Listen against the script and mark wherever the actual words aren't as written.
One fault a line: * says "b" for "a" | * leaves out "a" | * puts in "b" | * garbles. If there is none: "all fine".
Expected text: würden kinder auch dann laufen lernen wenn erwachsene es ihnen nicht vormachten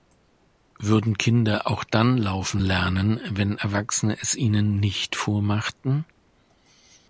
all fine